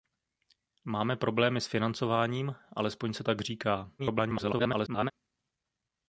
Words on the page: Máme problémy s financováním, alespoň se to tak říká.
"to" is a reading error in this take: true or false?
true